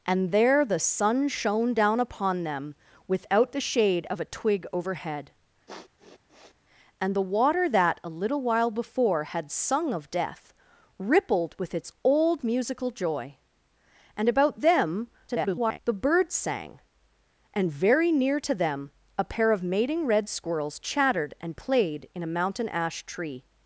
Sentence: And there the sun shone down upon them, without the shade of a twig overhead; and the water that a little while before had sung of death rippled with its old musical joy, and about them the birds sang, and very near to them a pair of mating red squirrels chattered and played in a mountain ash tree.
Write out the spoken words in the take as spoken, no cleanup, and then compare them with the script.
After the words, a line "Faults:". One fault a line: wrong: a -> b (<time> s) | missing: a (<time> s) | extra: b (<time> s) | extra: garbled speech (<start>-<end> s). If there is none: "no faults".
And there the sun shone down upon them, without the shade of a twig overhead; and the water that a little while before had sung of death rippled with its old musical joy, and about them [garbled] the birds sang, and very near to them a pair of mating red squirrels chattered and played in a mountain ash tree.
Faults:
extra: garbled speech (15.3-15.8 s)